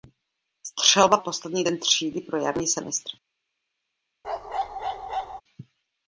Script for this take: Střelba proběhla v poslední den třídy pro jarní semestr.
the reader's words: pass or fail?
fail